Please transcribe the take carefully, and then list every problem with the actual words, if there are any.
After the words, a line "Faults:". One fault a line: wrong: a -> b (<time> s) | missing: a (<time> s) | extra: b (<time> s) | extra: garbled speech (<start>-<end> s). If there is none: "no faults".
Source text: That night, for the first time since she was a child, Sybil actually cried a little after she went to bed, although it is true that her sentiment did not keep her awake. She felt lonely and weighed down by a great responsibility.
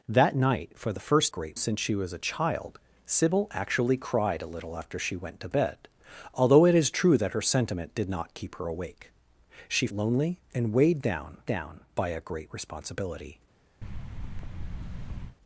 That night, for the first great since she was a child, Sybil actually cried a little after she went to bed, although it is true that her sentiment did not keep her awake. She lonely and weighed down down by a great responsibility.
Faults:
wrong: time -> great (1.3 s)
missing: felt (9.9 s)
extra: down (11.4 s)